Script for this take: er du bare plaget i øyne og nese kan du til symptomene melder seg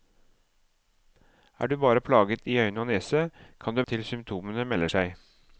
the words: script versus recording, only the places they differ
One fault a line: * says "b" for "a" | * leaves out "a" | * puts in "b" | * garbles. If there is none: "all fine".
all fine